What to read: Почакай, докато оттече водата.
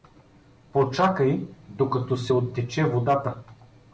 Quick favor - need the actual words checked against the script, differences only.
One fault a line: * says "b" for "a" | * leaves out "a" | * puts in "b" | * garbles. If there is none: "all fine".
* puts in "се"